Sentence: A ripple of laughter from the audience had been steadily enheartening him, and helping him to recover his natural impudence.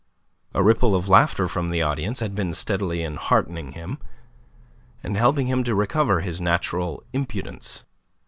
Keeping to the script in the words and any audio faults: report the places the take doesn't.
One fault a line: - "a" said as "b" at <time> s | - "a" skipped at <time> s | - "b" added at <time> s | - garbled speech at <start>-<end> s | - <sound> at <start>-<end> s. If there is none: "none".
none